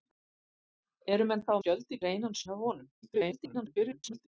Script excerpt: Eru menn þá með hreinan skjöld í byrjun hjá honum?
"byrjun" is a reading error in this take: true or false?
true